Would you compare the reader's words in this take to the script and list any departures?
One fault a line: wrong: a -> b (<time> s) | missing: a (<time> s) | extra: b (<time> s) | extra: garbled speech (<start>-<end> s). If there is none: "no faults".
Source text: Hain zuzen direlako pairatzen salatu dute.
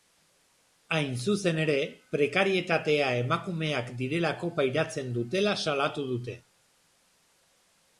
extra: ere prekarietatea emakumeak (1.6 s)
extra: dutela (5.2 s)